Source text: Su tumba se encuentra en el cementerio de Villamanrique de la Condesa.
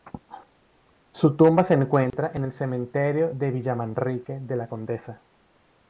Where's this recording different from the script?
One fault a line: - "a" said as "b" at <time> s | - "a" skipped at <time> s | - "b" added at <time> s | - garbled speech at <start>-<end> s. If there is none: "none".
none